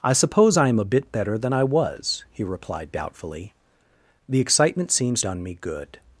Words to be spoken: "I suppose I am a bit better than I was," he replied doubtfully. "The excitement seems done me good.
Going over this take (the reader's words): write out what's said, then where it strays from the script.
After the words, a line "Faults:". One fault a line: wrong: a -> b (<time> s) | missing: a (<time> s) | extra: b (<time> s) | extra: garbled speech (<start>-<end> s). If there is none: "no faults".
"I suppose I am a bit better than I was," he replied doubtfully. "The excitement seems done me good.
Faults:
no faults